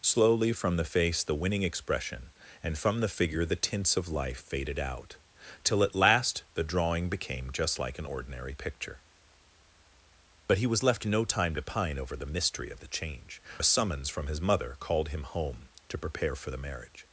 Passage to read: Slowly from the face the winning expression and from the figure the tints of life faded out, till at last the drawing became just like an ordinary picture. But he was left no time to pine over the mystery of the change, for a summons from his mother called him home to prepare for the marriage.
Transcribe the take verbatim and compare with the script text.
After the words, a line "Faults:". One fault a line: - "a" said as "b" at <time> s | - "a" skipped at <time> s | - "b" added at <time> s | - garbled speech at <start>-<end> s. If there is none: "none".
Slowly from the face the winning expression and from the figure the tints of life faded out, till at last the drawing became just like an ordinary picture. But he was left no time to pine over the mystery of the change, a summons from his mother called him home to prepare for the marriage.
Faults:
- "for" skipped at 13.4 s